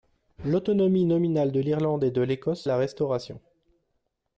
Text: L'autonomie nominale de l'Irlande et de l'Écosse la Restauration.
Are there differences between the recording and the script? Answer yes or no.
no